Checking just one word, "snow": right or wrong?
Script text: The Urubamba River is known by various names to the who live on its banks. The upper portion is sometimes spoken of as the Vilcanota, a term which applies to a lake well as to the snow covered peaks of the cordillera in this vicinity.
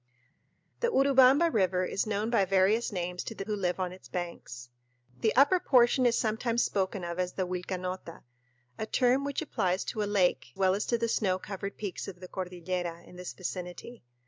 right